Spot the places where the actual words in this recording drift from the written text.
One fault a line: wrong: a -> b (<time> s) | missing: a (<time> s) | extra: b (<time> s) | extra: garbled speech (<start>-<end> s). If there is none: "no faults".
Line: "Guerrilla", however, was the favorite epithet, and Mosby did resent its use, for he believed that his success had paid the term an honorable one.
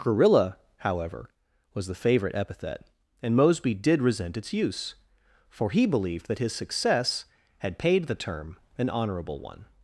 no faults